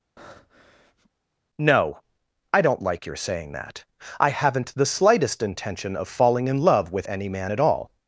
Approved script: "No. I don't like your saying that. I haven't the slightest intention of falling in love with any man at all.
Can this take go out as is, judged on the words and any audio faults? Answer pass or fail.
fail